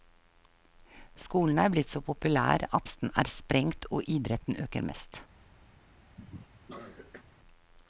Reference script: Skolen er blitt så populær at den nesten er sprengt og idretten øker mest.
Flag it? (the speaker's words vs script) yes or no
yes